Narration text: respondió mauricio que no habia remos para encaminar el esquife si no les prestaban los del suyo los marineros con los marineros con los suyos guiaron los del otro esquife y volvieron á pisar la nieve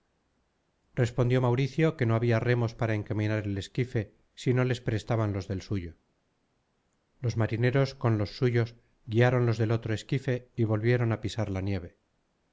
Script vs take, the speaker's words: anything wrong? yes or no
yes